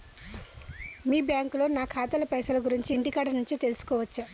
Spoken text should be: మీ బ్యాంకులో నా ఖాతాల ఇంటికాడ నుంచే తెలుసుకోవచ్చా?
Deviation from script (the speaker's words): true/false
true